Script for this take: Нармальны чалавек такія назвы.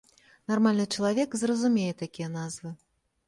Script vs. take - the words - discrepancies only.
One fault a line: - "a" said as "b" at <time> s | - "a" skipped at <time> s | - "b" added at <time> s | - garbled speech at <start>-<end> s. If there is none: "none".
- "зразумее" added at 1.4 s